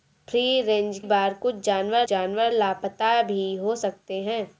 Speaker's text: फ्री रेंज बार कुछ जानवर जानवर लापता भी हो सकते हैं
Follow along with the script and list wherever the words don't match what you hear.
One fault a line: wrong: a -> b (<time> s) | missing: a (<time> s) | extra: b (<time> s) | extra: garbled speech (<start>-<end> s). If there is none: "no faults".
no faults